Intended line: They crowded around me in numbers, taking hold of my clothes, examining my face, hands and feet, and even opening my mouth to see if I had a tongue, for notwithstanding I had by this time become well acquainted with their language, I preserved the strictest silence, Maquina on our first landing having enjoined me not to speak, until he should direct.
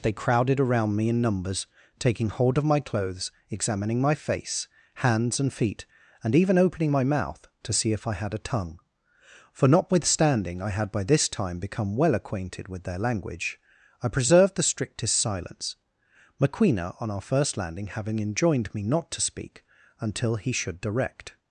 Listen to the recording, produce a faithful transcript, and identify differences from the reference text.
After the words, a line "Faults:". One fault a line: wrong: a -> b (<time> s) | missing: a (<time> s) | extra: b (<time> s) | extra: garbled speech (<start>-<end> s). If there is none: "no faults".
They crowded around me in numbers, taking hold of my clothes, examining my face, hands and feet, and even opening my mouth to see if I had a tongue, for notwithstanding I had by this time become well acquainted with their language, I preserved the strictest silence, Maquina on our first landing having enjoined me not to speak, until he should direct.
Faults:
no faults